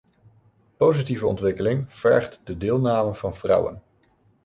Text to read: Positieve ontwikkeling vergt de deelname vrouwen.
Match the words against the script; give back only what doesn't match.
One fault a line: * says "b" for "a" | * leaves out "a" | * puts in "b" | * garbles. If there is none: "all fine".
* puts in "van"